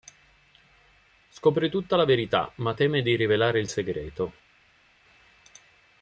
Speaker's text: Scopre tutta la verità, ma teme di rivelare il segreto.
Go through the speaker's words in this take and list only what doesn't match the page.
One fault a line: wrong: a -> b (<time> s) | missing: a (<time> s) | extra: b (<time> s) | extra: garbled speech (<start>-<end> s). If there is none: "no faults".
no faults